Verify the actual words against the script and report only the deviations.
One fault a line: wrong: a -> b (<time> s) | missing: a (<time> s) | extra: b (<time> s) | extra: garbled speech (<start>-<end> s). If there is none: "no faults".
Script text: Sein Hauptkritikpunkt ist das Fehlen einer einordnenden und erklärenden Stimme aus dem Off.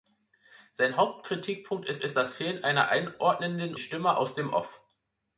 extra: ist (2.0 s)
missing: und erklärenden (3.7 s)